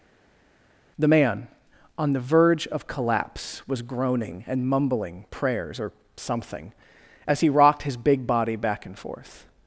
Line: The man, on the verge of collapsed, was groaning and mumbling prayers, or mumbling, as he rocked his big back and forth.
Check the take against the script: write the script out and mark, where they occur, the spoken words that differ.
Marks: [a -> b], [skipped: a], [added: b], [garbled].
The man, on the verge of [collapsed, -> collapse] was groaning and mumbling prayers, or [mumbling, -> something] as he rocked his big [added: body] back and forth.